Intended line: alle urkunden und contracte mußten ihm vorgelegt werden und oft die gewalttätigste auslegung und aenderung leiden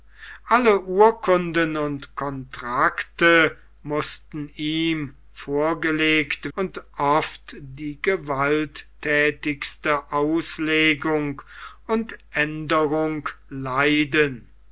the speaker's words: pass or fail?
fail